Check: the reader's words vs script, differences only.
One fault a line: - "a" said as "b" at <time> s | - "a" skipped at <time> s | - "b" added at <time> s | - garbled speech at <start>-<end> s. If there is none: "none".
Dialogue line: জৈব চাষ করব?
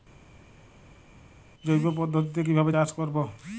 - "পদ্ধতিতে কিভাবে" added at 2.0 s